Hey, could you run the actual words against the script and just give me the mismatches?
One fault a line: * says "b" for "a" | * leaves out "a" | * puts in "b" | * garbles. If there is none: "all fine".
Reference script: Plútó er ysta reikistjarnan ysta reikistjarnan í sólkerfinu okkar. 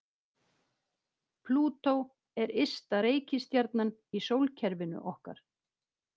* leaves out "ysta reikistjarnan"